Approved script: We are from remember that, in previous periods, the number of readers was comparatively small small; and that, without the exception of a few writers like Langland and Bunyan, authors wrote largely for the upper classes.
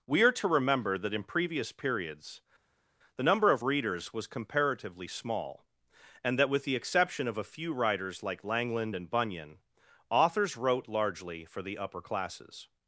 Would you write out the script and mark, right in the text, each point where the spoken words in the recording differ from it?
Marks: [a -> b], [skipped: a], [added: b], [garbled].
We are [from -> to] remember that, in previous periods, the number of readers was comparatively small [skipped: small;] and that, [without -> with] the exception of a few writers like Langland and Bunyan, authors wrote largely for the upper classes.